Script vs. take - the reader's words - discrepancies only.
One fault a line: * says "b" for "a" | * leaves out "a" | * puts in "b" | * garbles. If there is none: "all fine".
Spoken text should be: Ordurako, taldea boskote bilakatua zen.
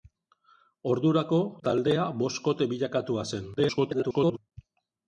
* garbles